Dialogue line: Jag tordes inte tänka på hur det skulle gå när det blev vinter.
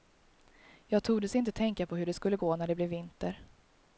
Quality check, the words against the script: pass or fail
pass